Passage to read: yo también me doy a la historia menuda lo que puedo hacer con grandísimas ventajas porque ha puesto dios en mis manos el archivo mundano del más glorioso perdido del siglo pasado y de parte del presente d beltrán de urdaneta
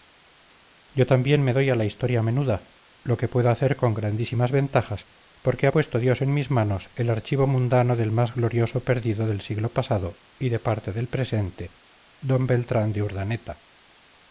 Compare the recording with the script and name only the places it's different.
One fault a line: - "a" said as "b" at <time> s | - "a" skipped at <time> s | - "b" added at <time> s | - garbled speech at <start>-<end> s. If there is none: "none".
none